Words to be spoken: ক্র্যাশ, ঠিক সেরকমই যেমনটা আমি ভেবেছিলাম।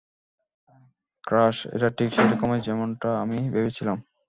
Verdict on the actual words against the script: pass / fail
fail